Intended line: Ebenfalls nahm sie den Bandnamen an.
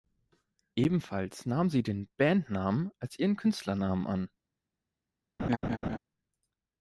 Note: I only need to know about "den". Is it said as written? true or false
true